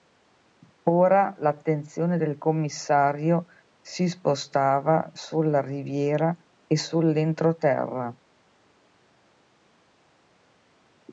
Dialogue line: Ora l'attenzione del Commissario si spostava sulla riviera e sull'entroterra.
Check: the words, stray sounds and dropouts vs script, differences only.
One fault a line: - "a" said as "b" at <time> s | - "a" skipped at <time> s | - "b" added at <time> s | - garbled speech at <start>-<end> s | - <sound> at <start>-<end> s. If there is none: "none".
none